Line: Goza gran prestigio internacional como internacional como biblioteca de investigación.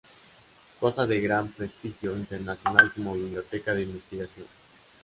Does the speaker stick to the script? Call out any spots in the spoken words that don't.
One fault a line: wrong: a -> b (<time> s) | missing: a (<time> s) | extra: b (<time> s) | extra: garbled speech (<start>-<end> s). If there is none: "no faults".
extra: de (1.1 s)
missing: internacional como (3.1 s)